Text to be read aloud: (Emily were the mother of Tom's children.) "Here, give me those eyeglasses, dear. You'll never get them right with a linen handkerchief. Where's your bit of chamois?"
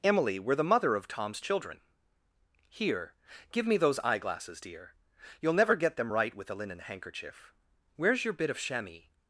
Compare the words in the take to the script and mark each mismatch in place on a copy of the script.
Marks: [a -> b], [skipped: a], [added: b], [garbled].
(Emily were the mother of Tom's children.) "Here, give me those eyeglasses, dear. You'll never get them right with a linen handkerchief. Where's your bit of chamois?"